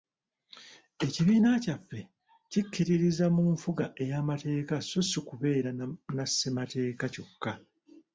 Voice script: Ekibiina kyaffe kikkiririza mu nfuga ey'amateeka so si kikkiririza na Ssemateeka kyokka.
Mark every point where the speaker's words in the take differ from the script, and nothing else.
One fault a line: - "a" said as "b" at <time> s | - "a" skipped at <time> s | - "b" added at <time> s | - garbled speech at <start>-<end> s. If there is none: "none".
- "kikkiririza" said as "kubeera" at 5.3 s